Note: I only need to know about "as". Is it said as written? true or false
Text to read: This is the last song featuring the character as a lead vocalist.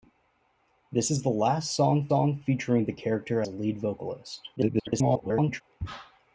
false